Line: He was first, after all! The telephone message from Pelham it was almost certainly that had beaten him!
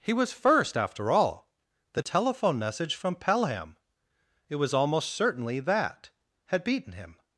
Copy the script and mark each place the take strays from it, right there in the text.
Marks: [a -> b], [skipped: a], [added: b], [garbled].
He was first, after all! The telephone message from Pelham it was almost certainly that had beaten him!